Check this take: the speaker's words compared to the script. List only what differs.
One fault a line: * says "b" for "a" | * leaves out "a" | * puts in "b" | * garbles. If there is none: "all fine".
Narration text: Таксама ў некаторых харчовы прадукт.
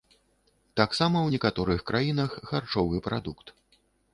* puts in "краінах"